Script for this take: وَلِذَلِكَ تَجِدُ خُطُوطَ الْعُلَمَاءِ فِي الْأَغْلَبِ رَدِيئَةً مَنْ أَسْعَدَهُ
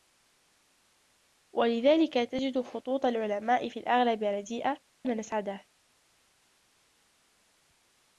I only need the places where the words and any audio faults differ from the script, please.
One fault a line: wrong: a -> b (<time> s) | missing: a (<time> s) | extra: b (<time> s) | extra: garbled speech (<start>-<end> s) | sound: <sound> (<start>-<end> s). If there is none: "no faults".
no faults